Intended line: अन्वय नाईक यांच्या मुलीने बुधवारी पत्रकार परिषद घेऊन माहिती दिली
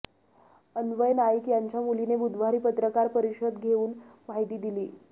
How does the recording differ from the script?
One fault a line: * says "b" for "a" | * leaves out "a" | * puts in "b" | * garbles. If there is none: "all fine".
all fine